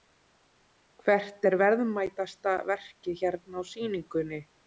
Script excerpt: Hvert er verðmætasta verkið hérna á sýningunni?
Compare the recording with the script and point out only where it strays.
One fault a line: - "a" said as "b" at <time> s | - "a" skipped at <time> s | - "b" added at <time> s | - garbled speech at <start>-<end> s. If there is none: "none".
none